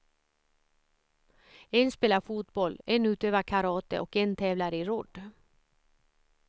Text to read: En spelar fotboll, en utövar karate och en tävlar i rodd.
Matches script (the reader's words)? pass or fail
pass